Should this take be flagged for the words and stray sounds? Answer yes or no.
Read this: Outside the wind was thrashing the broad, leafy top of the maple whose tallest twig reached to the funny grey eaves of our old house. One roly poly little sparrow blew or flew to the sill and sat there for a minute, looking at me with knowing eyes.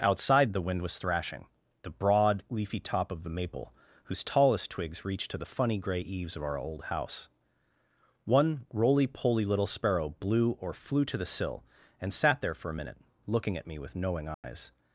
yes